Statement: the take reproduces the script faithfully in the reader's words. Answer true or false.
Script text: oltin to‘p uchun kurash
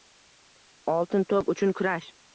true